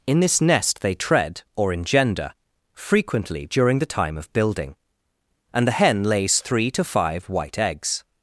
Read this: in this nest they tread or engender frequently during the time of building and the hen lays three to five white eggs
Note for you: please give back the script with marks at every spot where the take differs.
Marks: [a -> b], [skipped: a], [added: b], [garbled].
in this nest they tread or engender frequently during the time of building and the hen lays three to five white eggs